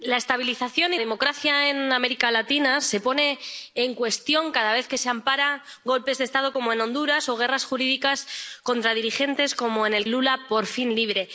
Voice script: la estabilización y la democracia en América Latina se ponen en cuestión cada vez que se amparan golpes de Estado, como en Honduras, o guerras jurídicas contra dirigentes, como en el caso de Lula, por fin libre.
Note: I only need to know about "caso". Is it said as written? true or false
false